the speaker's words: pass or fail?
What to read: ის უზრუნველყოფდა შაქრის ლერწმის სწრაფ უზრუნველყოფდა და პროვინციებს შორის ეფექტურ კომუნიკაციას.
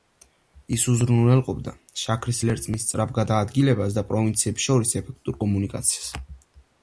fail